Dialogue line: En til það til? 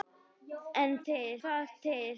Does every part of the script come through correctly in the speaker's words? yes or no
yes